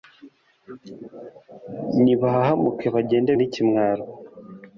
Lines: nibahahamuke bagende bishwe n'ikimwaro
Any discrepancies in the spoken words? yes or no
yes